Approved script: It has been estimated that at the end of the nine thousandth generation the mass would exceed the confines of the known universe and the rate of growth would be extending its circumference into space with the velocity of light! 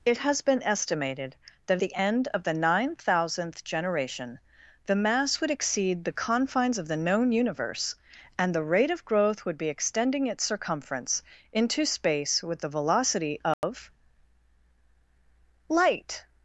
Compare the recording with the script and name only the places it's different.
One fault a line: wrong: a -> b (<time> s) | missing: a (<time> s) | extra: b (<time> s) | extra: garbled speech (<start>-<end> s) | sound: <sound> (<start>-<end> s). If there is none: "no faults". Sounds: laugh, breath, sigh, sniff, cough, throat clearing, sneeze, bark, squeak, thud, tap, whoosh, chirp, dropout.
missing: at (1.8 s)
sound: dropout (13.5-13.6 s)